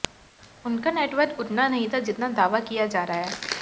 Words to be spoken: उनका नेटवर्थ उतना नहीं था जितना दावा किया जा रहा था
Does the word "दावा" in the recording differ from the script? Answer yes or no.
no